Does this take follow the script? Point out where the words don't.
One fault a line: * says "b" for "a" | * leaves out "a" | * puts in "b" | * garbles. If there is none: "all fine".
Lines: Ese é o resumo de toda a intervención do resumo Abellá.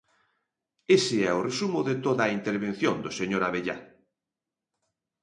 * says "señor" for "resumo"